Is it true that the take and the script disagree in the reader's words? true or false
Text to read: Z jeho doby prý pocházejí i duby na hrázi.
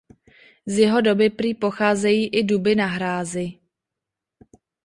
false